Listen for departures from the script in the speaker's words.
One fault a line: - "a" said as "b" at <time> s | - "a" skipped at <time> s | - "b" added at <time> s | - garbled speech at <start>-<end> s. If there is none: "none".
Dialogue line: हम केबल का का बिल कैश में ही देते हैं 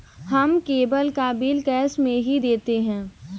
- "का" skipped at 1.3 s